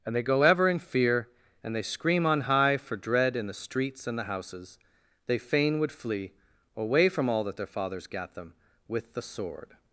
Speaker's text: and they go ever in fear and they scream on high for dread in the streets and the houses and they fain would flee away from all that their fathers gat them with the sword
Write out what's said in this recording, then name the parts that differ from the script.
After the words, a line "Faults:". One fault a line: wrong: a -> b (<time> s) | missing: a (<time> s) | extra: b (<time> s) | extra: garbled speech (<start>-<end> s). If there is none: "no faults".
and they go ever in fear and they scream on high for dread in the streets and the houses they fain would flee away from all that their fathers gat them with the sword
Faults:
missing: and (4.8 s)